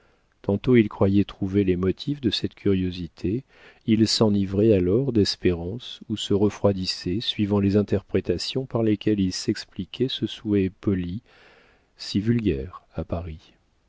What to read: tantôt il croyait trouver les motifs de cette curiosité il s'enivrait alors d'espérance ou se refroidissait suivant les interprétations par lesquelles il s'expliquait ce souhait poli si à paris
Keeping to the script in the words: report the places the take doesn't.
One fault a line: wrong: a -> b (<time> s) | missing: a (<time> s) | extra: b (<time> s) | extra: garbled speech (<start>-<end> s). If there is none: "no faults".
extra: vulgaire (12.2 s)